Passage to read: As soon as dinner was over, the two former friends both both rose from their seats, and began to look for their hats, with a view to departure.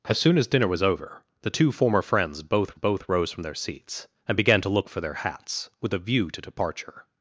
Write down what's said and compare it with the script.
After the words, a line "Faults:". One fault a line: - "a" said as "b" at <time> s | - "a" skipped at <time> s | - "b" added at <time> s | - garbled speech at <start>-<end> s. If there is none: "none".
As soon as dinner was over, the two former friends both both rose from their seats, and began to look for their hats, with a view to departure.
Faults:
none